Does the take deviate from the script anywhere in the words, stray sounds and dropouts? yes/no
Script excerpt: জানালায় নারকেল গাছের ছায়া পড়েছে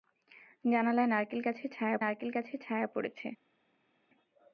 yes